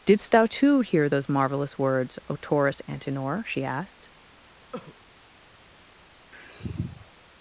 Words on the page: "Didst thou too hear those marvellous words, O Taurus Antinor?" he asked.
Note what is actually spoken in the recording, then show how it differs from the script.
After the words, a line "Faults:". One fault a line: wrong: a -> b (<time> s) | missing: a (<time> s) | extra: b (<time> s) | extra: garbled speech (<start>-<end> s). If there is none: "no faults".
"Didst thou too hear those marvellous words, O Taurus Antinor?" she asked.
Faults:
wrong: he -> she (3.4 s)